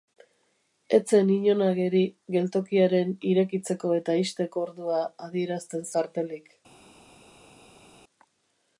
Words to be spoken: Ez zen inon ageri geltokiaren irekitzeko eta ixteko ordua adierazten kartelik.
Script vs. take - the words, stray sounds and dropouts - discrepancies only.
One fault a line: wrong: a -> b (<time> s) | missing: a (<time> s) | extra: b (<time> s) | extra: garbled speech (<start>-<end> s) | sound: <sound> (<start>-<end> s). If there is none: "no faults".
no faults